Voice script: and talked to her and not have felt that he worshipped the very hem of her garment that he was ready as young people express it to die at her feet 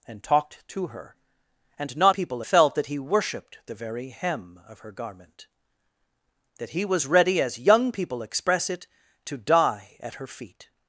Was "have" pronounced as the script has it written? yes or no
no